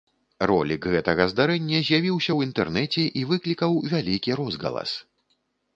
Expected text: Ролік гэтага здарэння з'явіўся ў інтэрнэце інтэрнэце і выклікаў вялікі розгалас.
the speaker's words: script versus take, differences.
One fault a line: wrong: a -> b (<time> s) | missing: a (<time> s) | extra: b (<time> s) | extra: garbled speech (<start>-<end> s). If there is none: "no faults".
missing: інтэрнэце (3.0 s)